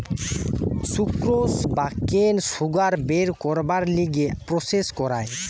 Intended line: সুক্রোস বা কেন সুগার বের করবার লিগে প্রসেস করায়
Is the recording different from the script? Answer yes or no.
no